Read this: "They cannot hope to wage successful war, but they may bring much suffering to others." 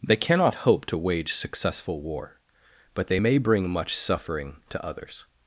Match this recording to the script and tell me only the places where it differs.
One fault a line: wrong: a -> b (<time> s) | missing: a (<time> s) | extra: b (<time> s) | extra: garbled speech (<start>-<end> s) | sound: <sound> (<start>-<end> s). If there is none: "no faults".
no faults